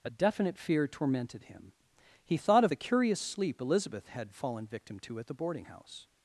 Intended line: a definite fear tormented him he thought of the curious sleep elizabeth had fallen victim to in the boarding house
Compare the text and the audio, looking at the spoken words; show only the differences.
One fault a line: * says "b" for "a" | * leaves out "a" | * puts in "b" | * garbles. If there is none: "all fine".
* says "at" for "in"